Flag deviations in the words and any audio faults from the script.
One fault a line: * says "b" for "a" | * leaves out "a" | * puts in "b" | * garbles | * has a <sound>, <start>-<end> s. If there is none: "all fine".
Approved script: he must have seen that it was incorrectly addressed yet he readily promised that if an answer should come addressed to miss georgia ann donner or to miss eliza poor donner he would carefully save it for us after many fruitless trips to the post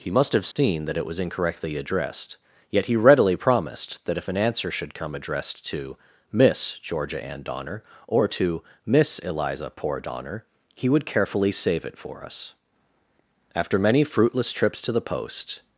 * has a dropout, 0.5-0.6 s